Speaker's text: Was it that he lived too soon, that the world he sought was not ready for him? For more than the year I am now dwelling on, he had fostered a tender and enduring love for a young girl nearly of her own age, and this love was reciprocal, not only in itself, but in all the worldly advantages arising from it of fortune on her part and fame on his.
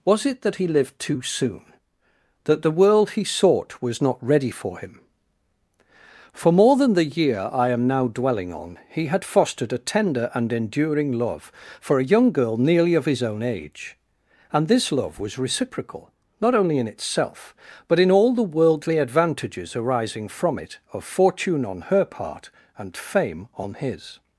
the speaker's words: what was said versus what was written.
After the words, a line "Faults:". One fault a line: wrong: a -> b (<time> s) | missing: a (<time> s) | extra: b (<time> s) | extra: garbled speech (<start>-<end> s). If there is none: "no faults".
Was it that he lived too soon, that the world he sought was not ready for him? For more than the year I am now dwelling on, he had fostered a tender and enduring love for a young girl nearly of his own age, and this love was reciprocal, not only in itself, but in all the worldly advantages arising from it of fortune on her part and fame on his.
Faults:
wrong: her -> his (13.0 s)